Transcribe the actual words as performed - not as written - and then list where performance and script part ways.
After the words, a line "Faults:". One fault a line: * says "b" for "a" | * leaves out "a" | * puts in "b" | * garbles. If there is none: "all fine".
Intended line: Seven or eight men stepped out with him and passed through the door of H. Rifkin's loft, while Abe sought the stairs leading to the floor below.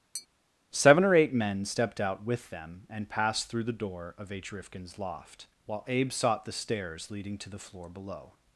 Seven or eight men stepped out with them and passed through the door of H. Rifkin's loft, while Abe sought the stairs leading to the floor below.
Faults:
* says "them" for "him"